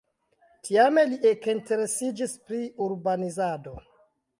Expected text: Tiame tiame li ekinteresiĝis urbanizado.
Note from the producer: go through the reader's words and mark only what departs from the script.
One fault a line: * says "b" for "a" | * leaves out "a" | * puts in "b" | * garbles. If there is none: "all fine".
* leaves out "tiame"
* puts in "pri"